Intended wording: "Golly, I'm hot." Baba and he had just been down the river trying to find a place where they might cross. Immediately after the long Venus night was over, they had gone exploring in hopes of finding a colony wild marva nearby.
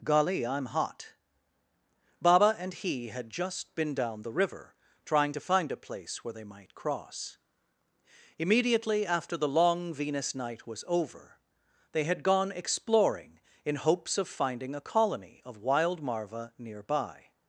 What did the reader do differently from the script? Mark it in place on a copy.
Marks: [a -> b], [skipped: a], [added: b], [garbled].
"Golly, I'm hot." Baba and he had just been down the river trying to find a place where they might cross. Immediately after the long Venus night was over, they had gone exploring in hopes of finding a colony [added: of] wild marva nearby.